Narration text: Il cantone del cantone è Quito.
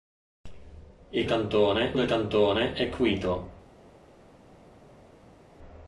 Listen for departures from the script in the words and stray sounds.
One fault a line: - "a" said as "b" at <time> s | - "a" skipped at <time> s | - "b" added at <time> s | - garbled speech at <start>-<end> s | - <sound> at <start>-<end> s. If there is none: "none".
none